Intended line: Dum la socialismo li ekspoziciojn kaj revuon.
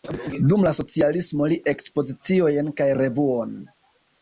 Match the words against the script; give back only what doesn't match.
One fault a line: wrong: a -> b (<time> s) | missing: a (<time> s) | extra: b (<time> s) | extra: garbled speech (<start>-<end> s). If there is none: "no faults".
no faults